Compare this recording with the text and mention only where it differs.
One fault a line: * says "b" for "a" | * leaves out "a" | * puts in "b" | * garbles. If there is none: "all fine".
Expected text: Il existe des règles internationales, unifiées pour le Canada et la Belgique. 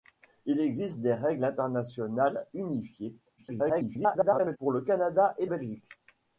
* garbles
* leaves out "la"